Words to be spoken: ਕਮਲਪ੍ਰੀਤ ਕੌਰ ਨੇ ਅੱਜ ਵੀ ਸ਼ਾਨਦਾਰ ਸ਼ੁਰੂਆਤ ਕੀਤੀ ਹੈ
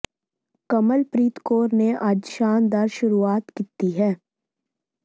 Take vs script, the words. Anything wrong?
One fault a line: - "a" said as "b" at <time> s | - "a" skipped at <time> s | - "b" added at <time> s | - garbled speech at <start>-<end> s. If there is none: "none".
- "ਵੀ" skipped at 2.3 s